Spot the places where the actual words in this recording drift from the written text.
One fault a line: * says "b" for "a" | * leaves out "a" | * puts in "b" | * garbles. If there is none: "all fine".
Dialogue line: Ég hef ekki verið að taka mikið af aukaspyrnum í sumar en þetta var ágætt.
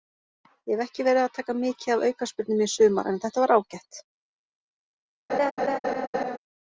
all fine